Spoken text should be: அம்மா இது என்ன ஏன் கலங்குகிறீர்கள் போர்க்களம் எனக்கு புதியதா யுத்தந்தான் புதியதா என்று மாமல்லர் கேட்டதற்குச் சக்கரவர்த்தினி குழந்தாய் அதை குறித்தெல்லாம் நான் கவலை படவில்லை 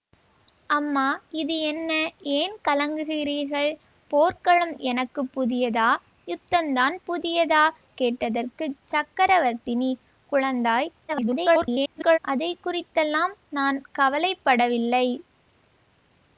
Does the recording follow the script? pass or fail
fail